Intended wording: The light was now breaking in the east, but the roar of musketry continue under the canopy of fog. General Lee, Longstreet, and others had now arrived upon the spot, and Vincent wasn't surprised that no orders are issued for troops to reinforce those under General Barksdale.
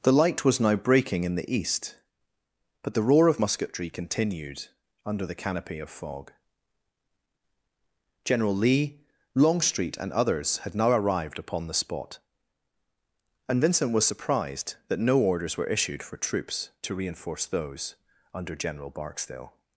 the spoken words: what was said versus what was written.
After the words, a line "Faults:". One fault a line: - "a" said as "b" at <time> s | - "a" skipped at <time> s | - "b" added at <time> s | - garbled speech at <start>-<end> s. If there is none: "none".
The light was now breaking in the east, but the roar of musketry continued under the canopy of fog. General Lee, Longstreet, and others had now arrived upon the spot, and Vincent was surprised that no orders were issued for troops to reinforce those under General Barksdale.
Faults:
- "continue" said as "continued" at 3.9 s
- "wasn't" said as "was" at 13.9 s
- "are" said as "were" at 15.6 s